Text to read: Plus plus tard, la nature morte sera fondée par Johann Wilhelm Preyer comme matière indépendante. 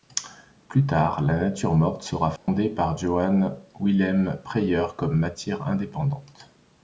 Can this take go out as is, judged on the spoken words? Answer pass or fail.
fail